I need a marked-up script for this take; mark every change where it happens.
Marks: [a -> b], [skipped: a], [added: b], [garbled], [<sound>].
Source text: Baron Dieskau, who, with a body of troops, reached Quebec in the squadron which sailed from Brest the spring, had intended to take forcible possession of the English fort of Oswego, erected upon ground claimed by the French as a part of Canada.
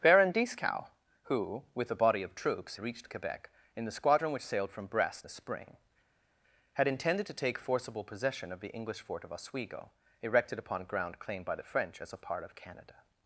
Baron Dieskau, who, with a body of troops, reached Quebec in the squadron which sailed from Brest the spring, had intended to take forcible possession of the English fort of Oswego, erected upon ground claimed by the French as a part of Canada.